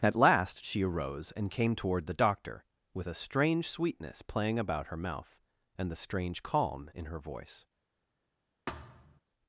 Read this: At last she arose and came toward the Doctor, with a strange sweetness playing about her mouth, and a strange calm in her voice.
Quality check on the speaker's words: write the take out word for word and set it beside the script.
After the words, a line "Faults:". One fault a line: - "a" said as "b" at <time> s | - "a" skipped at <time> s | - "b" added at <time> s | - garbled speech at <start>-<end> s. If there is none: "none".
At last she arose and came toward the Doctor, with a strange sweetness playing about her mouth, and the strange calm in her voice.
Faults:
- "a" said as "the" at 5.9 s